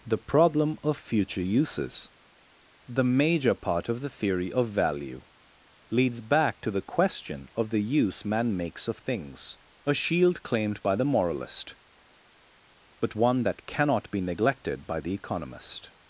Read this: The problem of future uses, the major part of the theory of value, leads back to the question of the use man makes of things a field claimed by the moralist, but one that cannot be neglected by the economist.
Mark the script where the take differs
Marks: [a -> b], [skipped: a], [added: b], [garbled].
The problem of future uses, the major part of the theory of value, leads back to the question of the use man makes of things a [field -> shield] claimed by the moralist, but one that cannot be neglected by the economist.